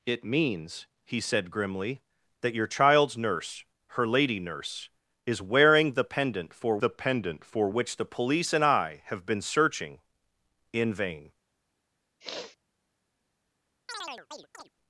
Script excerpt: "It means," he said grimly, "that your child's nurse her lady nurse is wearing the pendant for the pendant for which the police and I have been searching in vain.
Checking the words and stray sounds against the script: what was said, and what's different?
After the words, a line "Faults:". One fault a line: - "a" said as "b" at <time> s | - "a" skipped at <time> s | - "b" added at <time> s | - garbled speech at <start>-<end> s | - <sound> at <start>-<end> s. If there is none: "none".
"It means," he said grimly, "that your child's nurse her lady nurse is wearing the pendant for the pendant for which the police and I have been searching in vain.
Faults:
- sniff at 12.2-12.6 s
- chirp at 13.9-14.7 s